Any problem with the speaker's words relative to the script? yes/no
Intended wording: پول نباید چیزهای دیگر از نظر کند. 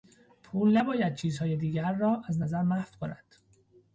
yes